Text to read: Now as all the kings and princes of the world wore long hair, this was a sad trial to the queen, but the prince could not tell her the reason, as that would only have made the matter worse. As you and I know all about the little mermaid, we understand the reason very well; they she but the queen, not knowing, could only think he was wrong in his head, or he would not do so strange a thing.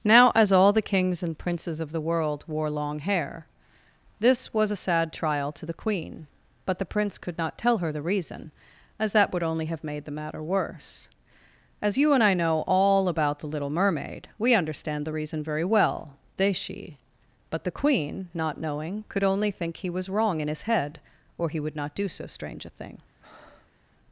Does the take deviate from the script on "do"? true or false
false